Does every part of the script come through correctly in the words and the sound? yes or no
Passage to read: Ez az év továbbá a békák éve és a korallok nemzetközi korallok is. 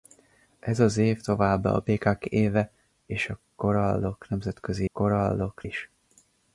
yes